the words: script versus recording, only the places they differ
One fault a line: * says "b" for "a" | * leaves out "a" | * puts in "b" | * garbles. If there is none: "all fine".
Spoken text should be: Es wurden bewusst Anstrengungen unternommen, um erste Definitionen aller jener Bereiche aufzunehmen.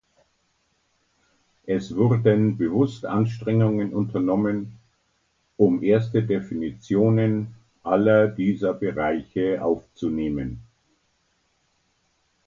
* says "dieser" for "jener"